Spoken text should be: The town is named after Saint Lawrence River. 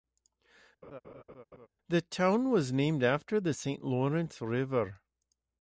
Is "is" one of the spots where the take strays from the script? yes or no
yes